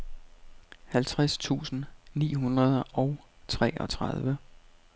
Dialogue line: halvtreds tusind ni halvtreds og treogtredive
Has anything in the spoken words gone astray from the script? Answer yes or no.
yes